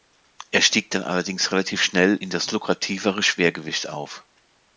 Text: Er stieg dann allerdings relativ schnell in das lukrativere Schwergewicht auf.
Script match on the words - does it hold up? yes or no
yes